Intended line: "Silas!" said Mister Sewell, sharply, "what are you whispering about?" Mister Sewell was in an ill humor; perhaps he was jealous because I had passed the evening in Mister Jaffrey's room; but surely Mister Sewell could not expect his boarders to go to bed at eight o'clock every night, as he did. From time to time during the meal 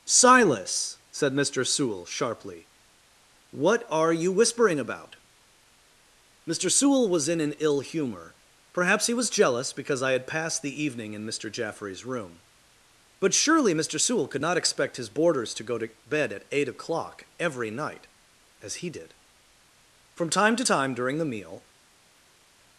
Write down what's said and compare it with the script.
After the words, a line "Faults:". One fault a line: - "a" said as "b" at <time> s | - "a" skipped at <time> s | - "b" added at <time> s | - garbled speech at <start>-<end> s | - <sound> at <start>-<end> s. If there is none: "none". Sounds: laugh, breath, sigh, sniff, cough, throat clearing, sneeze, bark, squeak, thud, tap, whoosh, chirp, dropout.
"Silas!" said Mister Sewell, sharply, "what are you whispering about?" Mister Sewell was in an ill humor; perhaps he was jealous because I had passed the evening in Mister Jaffrey's room; but surely Mister Sewell could not expect his boarders to go to bed at eight o'clock every night, as he did. From time to time during the meal
Faults:
none